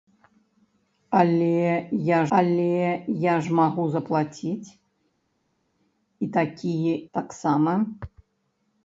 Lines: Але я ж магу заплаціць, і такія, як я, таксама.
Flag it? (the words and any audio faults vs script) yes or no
yes